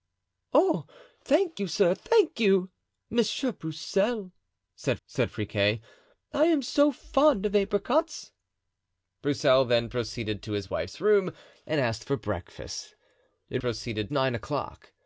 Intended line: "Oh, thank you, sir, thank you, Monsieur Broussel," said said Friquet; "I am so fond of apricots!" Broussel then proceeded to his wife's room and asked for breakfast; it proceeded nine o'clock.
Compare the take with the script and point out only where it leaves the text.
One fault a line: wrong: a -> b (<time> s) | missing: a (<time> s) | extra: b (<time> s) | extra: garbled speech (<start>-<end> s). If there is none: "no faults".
no faults